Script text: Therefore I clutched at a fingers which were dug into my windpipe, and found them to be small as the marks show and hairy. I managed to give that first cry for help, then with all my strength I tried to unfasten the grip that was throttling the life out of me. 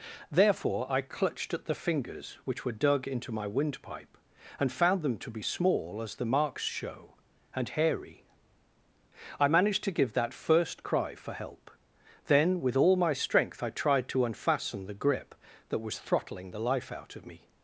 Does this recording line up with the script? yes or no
no